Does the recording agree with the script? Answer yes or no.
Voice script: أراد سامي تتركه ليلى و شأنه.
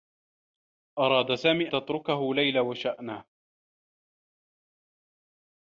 yes